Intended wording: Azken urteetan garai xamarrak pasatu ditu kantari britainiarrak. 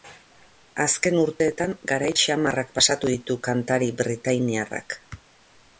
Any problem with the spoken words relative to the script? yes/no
no